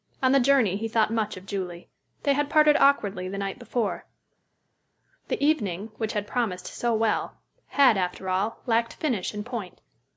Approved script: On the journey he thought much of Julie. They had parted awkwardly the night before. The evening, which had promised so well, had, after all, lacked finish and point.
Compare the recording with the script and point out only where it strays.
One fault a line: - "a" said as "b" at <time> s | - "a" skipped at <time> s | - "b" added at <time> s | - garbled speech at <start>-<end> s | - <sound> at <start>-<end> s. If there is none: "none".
none